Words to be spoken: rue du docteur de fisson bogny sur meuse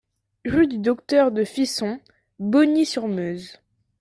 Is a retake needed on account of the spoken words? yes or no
no